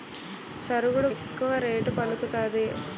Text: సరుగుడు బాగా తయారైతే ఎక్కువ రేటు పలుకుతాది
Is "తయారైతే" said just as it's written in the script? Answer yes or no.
no